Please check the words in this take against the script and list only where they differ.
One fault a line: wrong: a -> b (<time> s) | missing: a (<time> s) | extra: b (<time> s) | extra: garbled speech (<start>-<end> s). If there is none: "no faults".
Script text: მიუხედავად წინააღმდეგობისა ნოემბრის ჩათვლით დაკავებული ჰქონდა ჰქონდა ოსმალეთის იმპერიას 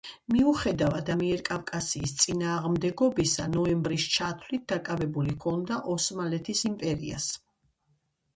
extra: ამიერკავკასიის (1.1 s)
missing: ჰქონდა (5.8 s)